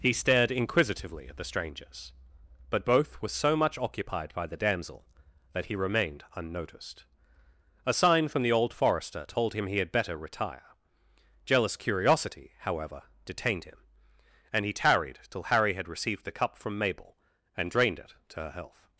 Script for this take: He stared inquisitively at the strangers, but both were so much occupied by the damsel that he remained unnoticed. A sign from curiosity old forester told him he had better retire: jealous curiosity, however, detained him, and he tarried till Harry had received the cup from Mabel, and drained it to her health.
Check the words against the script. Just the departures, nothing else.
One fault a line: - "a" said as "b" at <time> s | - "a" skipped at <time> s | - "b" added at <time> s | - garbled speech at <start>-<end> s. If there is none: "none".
- "curiosity" said as "the" at 8.4 s